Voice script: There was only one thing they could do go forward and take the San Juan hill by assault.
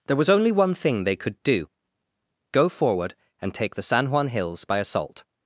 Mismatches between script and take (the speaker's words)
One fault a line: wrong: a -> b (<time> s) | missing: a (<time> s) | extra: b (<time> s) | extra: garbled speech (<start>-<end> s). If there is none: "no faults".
wrong: hill -> hills (4.3 s)